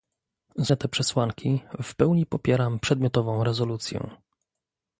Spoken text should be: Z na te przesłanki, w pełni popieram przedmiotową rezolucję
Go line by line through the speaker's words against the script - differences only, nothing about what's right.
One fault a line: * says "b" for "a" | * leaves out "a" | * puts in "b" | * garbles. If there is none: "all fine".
all fine